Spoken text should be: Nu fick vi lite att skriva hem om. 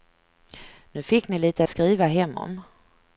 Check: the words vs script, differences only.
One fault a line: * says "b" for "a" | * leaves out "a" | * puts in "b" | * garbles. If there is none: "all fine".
* says "ni" for "vi"